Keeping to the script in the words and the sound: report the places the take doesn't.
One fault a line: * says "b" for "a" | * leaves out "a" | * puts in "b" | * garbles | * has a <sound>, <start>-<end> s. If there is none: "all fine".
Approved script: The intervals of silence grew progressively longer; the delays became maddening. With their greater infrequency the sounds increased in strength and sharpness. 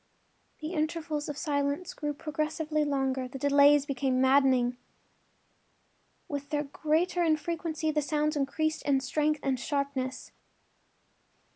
all fine